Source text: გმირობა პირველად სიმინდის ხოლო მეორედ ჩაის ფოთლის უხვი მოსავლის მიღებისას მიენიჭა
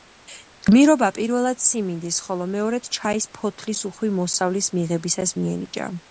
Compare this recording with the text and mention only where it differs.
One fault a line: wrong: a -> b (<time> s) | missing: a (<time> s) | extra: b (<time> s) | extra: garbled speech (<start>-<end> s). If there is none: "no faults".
no faults